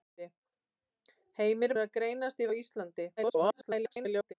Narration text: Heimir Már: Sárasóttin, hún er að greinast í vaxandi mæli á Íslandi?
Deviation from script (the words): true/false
true